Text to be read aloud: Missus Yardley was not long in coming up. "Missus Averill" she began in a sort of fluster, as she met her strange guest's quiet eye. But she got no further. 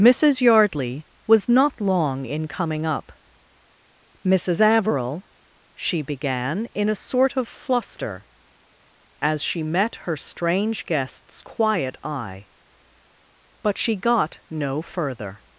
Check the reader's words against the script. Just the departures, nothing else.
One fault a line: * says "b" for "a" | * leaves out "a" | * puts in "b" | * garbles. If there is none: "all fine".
all fine